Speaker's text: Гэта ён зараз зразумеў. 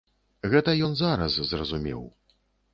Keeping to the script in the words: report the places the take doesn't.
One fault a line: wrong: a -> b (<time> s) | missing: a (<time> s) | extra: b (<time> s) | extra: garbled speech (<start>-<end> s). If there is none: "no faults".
no faults